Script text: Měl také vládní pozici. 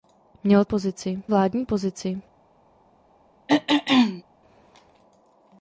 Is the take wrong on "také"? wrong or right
wrong